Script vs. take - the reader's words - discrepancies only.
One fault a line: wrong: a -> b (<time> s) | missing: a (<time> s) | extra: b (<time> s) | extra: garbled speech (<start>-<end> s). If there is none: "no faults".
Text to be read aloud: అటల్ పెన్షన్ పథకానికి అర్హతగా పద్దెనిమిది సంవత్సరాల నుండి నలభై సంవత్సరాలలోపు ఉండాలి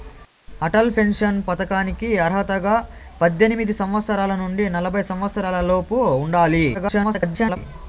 extra: garbled speech (6.7-7.6 s)